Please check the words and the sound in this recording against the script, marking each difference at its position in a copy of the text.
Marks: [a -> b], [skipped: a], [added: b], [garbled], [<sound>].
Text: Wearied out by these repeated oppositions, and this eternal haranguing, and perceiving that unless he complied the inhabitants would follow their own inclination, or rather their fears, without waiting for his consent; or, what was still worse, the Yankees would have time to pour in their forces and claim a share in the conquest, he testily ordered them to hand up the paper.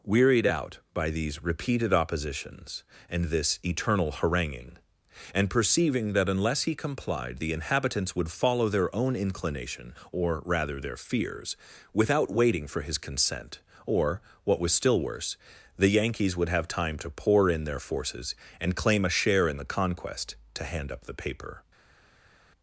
Wearied out by these repeated oppositions, and this eternal haranguing, and perceiving that unless he complied the inhabitants would follow their own inclination, or rather their fears, without waiting for his consent; or, what was still worse, the Yankees would have time to pour in their forces and claim a share in the conquest, [skipped: he testily ordered them] to hand up the paper.